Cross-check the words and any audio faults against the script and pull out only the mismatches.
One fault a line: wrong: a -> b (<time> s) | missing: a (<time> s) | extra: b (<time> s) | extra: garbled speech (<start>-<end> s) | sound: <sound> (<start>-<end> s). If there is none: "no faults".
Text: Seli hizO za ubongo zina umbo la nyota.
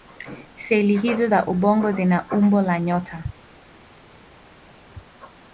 no faults